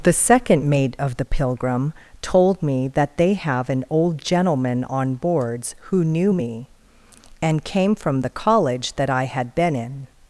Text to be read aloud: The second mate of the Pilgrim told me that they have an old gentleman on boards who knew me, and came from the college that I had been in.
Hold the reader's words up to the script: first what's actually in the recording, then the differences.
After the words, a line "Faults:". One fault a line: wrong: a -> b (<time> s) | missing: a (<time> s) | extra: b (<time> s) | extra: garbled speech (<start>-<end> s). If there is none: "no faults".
The second mate of the Pilgrim told me that they have an old gentleman on boards who knew me, and came from the college that I had been in.
Faults:
no faults